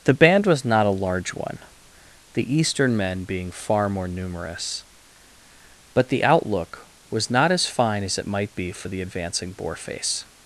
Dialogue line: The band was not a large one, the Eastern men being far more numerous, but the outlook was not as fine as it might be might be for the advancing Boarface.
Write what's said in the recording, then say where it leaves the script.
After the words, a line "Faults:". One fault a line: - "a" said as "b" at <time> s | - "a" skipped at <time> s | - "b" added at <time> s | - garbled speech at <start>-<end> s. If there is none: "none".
The band was not a large one, the Eastern men being far more numerous, but the outlook was not as fine as it might be for the advancing Boarface.
Faults:
- "might be" skipped at 8.7 s